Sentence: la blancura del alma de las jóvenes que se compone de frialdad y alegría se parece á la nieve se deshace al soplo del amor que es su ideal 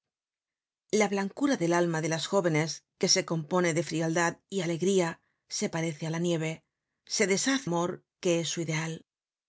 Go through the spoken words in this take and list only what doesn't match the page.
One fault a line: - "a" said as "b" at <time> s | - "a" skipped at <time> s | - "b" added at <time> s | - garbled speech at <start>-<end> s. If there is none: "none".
- "al soplo del" skipped at 7.7 s